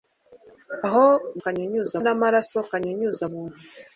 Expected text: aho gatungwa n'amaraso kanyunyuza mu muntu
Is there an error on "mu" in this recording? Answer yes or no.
yes